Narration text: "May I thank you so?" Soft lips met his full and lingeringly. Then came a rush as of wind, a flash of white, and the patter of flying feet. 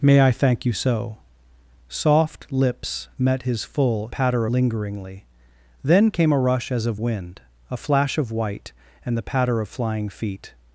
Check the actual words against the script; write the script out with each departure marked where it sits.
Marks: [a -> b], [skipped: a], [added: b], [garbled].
"May I thank you so?" Soft lips met his full [and -> patter] lingeringly. Then came a rush as of wind, a flash of white, and the patter of flying feet.